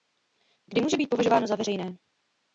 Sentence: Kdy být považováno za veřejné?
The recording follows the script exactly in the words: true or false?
false